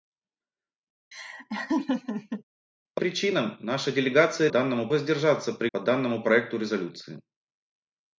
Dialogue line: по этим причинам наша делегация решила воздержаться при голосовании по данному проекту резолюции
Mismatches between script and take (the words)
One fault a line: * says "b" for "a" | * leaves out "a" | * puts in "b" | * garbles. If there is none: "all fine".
* leaves out "этим"
* says "данному" for "решила"
* leaves out "голосовании"